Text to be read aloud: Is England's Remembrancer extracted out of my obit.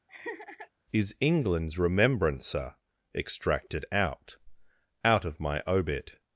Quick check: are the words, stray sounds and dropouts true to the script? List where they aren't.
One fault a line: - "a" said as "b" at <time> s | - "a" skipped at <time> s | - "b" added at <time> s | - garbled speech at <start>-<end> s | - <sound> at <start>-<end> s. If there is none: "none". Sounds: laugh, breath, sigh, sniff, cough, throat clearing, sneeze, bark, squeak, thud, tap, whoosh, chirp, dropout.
- laugh at 0.1-0.7 s
- "out" added at 5.0 s